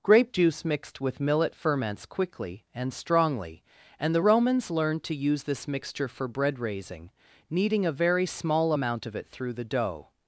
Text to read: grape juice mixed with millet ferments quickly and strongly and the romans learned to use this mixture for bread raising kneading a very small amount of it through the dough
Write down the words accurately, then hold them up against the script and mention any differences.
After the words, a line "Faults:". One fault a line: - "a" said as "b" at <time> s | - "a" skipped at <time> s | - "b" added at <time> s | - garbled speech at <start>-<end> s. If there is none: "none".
grape juice mixed with millet ferments quickly and strongly and the romans learned to use this mixture for bread raising kneading a very small amount of it through the dough
Faults:
none